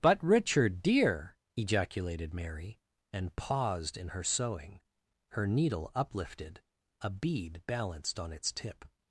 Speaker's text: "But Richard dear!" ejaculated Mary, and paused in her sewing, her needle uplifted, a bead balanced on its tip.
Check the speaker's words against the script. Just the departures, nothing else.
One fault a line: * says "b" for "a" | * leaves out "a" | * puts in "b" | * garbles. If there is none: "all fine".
all fine